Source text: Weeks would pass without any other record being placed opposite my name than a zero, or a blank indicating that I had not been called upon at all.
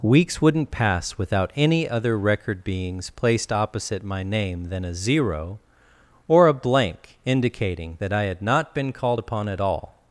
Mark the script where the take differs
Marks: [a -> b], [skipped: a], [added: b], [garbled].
Weeks [would -> wouldn't] pass without any other record [being -> beings] placed opposite my name than a zero, or a blank indicating that I had not been called upon at all.